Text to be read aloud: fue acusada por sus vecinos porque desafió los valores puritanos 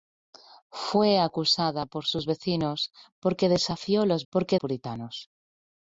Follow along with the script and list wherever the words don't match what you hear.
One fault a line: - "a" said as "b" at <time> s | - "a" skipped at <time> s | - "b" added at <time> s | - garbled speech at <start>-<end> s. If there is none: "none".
- "valores" said as "porque" at 4.3 s